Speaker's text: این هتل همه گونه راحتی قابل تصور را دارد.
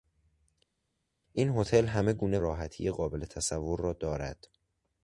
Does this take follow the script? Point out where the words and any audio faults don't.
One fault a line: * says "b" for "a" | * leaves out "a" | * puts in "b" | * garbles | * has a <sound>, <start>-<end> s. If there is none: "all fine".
all fine